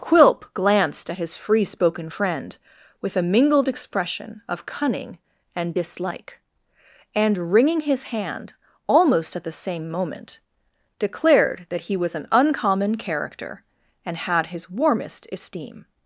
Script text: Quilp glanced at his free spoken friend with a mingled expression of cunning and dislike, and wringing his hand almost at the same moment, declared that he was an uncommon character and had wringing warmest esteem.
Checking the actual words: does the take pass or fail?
fail